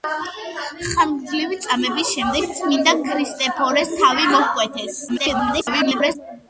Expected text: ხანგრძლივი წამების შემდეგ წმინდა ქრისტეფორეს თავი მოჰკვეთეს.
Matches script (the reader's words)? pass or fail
fail